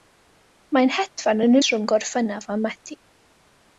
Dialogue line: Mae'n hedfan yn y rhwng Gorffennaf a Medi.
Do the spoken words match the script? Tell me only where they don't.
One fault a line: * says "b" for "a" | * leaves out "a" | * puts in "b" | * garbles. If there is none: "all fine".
all fine